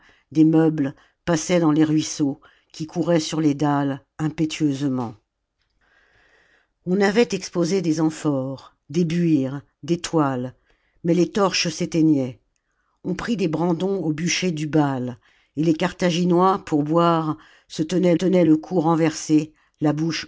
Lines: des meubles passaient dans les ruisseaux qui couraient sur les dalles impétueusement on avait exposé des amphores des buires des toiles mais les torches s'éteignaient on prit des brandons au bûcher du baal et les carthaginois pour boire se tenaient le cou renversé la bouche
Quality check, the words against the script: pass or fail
fail